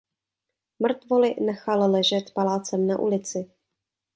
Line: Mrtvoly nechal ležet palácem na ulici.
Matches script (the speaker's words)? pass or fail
pass